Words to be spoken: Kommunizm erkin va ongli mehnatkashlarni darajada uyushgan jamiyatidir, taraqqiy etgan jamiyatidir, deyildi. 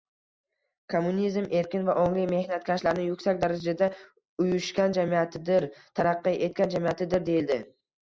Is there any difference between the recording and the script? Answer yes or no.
yes